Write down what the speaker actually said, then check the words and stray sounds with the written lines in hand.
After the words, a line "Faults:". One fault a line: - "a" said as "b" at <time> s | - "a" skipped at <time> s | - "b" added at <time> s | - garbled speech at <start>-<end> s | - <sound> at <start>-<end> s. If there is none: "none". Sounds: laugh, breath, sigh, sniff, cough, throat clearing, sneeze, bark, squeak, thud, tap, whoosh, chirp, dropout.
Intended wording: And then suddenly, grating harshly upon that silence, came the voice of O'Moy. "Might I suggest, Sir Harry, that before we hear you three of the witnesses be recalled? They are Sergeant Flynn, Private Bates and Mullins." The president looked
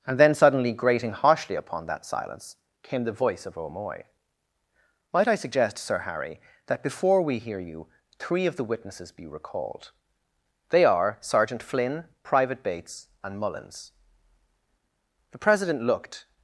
And then suddenly, grating harshly upon that silence, came the voice of O'Moy. "Might I suggest, Sir Harry, that before we hear you three of the witnesses be recalled? They are Sergeant Flynn, Private Bates and Mullins." The president looked
Faults:
none